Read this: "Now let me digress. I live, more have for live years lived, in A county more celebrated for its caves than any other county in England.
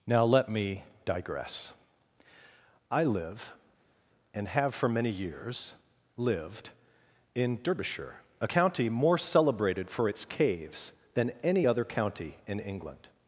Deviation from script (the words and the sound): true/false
true